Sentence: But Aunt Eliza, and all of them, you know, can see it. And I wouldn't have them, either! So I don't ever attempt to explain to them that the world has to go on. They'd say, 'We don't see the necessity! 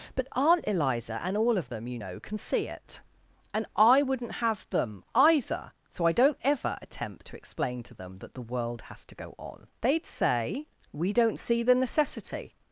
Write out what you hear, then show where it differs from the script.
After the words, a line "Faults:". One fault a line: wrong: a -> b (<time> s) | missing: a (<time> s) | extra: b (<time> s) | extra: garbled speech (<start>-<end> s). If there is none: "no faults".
But Aunt Eliza, and all of them, you know, can see it. And I wouldn't have them, either! So I don't ever attempt to explain to them that the world has to go on. They'd say, 'We don't see the necessity!
Faults:
no faults